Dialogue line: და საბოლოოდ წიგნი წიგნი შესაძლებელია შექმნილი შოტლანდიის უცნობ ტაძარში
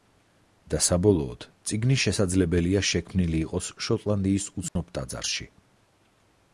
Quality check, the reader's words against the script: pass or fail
fail